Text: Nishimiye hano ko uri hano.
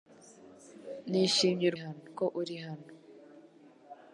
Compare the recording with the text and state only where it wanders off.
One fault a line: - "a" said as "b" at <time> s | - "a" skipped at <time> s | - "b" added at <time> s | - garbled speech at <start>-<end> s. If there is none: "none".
none